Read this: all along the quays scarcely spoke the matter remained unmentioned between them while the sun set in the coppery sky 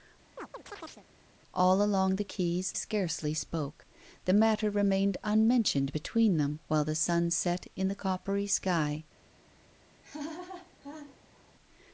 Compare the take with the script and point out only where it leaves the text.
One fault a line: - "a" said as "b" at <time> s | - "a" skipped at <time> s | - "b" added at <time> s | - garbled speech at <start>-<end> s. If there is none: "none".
none